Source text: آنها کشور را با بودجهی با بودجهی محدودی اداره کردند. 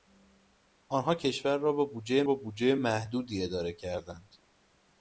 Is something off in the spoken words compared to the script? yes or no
no